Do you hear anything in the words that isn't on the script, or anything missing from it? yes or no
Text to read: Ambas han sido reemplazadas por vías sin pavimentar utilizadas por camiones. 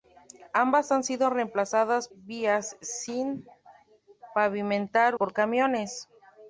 yes